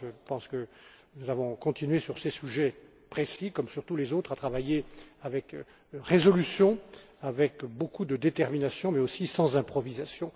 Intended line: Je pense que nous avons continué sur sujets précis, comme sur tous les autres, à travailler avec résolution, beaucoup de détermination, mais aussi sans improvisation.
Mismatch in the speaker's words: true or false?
true